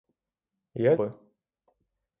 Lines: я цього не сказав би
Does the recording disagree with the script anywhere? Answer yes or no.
yes